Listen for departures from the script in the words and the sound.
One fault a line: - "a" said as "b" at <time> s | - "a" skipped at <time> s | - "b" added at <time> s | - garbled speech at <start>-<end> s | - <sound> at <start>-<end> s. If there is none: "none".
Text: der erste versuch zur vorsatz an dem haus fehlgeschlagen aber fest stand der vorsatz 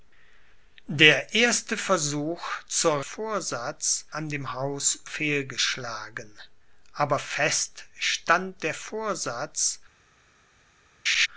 - laugh at 11.1-11.3 s